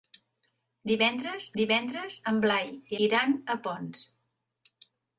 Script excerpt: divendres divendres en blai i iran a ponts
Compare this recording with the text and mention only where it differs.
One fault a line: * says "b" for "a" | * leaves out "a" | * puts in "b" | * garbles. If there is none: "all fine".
all fine